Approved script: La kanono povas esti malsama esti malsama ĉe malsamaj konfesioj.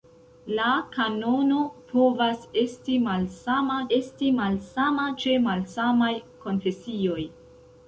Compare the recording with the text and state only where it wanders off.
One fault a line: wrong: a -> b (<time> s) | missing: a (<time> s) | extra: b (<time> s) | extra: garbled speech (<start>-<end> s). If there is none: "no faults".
no faults